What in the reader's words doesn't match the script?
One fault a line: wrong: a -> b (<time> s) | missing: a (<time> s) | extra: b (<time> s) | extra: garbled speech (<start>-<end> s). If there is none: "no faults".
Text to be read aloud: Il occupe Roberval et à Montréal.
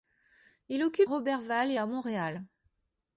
no faults